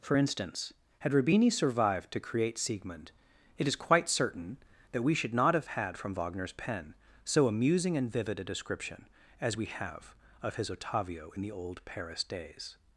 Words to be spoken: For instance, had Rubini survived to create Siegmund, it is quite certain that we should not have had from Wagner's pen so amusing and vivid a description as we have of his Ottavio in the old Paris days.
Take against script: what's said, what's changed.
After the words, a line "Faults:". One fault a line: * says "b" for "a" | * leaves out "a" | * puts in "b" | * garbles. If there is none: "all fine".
For instance, had Rubini survived to create Siegmund, it is quite certain that we should not have had from Wagner's pen so amusing and vivid a description as we have of his Ottavio in the old Paris days.
Faults:
all fine